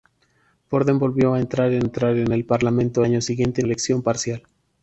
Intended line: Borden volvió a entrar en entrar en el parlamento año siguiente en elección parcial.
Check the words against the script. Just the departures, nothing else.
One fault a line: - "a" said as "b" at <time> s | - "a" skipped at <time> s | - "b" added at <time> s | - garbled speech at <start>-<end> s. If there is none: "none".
none